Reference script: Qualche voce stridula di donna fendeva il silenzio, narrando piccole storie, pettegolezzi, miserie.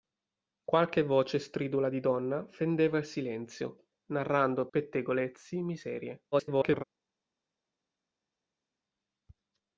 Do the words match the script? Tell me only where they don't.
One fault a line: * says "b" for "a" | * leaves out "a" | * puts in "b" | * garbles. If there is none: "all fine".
* leaves out "piccole storie"
* garbles